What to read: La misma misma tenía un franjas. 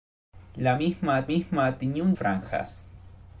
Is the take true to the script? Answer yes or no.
yes